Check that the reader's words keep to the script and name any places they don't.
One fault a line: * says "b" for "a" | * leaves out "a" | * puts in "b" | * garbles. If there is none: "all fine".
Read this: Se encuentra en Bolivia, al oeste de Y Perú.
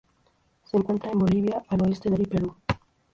all fine